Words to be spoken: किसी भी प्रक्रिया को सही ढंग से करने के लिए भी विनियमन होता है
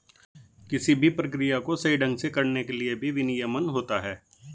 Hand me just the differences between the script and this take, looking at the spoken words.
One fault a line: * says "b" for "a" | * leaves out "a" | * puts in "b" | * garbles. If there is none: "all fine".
all fine